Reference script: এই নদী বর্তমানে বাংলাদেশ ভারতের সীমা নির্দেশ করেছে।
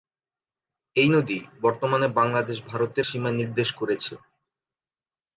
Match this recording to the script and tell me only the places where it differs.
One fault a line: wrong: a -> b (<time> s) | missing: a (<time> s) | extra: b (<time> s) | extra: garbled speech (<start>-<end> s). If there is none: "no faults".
no faults